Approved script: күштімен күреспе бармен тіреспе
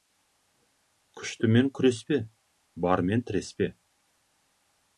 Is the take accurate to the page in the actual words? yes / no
yes